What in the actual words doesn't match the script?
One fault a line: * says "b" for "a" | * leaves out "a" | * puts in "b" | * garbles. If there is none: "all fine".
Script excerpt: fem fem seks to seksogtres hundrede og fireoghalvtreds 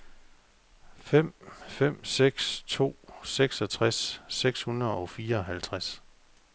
* puts in "seks"